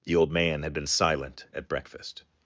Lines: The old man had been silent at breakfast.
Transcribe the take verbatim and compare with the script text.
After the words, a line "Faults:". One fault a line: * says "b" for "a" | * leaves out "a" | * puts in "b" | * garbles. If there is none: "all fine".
The old man had been silent at breakfast.
Faults:
all fine